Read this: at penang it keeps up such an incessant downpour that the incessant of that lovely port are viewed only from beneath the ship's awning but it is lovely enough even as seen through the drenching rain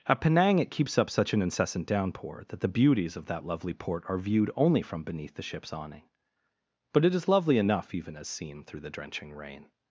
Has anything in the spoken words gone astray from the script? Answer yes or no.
yes